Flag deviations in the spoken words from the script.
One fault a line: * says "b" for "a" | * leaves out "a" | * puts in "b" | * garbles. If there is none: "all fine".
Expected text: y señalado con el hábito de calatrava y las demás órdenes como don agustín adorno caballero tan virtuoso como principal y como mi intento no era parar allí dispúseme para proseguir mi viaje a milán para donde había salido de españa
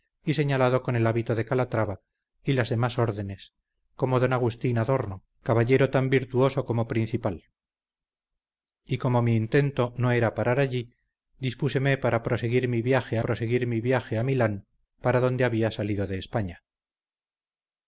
* puts in "proseguir mi viaje"